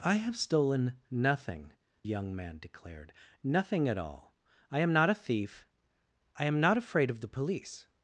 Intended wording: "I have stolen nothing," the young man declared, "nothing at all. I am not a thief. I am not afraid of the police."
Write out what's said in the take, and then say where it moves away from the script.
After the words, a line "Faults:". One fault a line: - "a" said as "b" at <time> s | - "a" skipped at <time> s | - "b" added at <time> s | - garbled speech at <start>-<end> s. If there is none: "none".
"I have stolen nothing," young man declared, "nothing at all. I am not a thief. I am not afraid of the police."
Faults:
- "the" skipped at 1.7 s